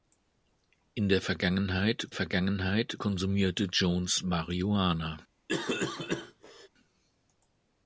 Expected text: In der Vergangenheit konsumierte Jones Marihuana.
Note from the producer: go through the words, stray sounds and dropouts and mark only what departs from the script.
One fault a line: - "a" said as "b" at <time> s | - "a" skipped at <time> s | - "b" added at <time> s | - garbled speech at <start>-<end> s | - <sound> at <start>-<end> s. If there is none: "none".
- "Vergangenheit" added at 2.1 s
- cough at 5.5-6.7 s